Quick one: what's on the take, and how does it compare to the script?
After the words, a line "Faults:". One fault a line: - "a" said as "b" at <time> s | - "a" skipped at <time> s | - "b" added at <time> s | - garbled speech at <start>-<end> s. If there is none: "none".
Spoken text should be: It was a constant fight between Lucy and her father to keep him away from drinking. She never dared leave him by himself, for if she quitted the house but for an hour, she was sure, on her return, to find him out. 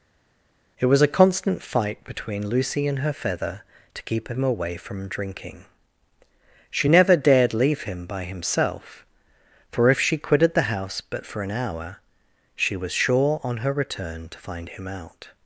It was a constant fight between Lucy and her feather to keep him away from drinking. She never dared leave him by himself, for if she quitted the house but for an hour, she was sure, on her return, to find him out.
Faults:
- "father" said as "feather" at 3.1 s